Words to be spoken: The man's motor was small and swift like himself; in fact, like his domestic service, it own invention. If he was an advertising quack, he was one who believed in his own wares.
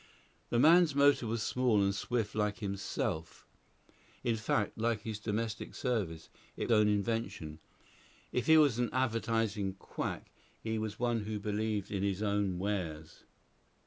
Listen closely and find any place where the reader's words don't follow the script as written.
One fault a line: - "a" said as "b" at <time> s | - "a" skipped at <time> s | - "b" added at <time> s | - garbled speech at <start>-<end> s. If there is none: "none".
none